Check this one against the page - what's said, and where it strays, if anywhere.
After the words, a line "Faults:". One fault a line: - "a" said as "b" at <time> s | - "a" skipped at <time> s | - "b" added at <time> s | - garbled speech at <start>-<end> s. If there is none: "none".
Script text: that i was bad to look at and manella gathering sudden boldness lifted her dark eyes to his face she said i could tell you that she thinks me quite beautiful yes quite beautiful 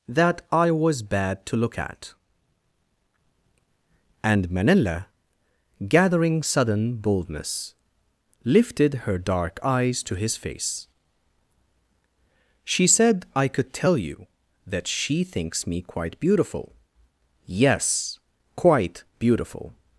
that i was bad to look at and manella gathering sudden boldness lifted her dark eyes to his face she said i could tell you that she thinks me quite beautiful yes quite beautiful
Faults:
none